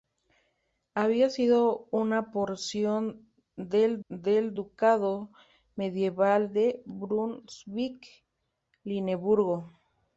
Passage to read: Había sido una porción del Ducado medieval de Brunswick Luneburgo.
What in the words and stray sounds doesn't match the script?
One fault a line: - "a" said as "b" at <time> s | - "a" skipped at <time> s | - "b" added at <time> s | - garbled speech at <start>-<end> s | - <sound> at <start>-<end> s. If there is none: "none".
- "del" added at 4.1 s